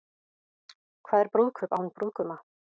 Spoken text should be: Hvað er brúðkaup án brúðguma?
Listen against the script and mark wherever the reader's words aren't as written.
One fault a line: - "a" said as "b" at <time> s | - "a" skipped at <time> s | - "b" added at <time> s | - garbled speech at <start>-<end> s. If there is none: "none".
none